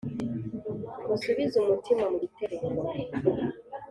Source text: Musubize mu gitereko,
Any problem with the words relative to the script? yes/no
yes